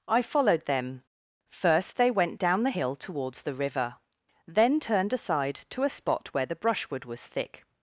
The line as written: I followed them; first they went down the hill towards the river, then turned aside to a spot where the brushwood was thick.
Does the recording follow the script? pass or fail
pass